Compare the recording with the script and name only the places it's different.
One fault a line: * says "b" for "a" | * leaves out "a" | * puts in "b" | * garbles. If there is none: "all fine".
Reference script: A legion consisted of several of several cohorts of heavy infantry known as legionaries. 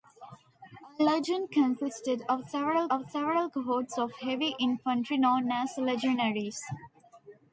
all fine